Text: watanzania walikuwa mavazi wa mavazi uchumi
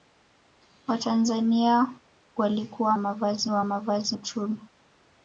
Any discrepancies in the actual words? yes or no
no